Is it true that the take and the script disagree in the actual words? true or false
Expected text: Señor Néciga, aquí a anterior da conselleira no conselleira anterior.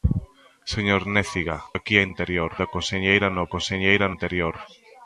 false